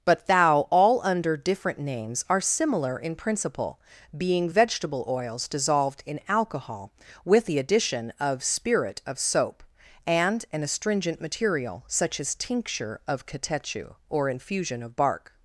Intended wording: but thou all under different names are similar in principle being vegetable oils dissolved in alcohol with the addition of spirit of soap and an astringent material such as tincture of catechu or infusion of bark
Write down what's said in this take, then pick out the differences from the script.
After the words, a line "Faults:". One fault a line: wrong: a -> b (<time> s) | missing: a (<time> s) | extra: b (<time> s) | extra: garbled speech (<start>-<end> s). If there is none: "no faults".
but thou all under different names are similar in principle being vegetable oils dissolved in alcohol with the addition of spirit of soap and an astringent material such as tincture of catechu or infusion of bark
Faults:
no faults